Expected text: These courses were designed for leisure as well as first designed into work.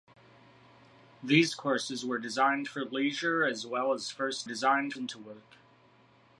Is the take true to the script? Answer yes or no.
yes